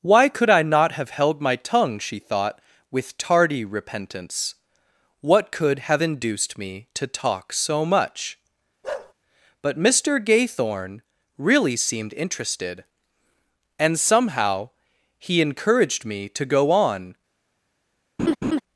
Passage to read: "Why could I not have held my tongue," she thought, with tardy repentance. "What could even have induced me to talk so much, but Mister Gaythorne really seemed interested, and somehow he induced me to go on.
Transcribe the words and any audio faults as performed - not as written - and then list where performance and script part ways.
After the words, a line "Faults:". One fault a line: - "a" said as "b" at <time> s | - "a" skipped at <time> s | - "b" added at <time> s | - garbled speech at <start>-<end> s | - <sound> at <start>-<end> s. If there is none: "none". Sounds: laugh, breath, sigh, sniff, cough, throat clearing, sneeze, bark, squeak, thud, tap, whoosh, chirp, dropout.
"Why could I not have held my tongue," she thought, with tardy repentance. "What could have induced me to talk so much, but Mister Gaythorne really seemed interested, and somehow he encouraged me to go on.
Faults:
- "even" skipped at 5.8 s
- bark at 8.8-9.1 s
- "induced" said as "encouraged" at 15.4 s
- laugh at 18.2-18.6 s